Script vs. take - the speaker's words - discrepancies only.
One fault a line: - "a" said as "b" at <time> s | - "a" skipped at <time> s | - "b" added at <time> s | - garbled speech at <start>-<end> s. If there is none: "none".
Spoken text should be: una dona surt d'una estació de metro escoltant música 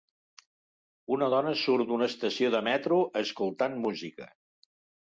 none